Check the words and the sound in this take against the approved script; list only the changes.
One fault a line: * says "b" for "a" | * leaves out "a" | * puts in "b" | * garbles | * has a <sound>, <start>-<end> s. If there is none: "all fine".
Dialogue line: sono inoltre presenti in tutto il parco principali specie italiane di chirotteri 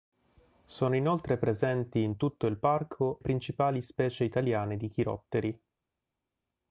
all fine